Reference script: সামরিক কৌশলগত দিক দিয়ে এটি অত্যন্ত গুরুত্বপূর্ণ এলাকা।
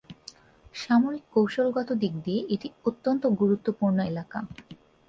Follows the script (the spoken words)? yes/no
yes